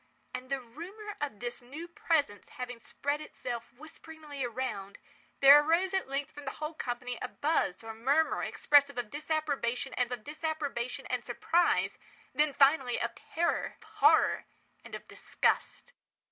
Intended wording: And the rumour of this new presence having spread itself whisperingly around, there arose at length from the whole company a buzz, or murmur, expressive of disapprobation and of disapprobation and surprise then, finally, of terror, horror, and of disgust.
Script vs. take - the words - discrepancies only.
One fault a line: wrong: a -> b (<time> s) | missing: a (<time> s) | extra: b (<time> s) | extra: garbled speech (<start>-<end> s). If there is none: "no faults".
no faults